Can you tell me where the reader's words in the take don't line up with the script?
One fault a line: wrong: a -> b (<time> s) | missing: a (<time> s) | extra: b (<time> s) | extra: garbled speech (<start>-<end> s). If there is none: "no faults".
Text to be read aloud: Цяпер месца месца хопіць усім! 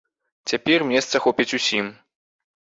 missing: месца (1.2 s)